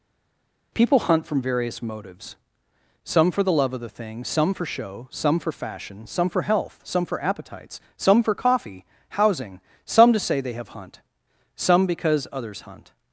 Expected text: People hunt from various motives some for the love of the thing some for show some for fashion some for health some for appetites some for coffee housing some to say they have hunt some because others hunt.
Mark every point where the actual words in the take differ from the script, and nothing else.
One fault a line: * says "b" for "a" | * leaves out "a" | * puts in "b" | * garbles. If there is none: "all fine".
all fine